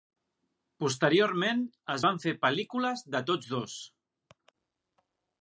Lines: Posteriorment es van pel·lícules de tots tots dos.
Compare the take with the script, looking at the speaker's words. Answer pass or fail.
fail